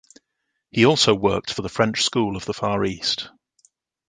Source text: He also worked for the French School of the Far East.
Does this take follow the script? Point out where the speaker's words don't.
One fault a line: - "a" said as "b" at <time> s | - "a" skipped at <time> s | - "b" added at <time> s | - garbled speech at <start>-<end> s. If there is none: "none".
none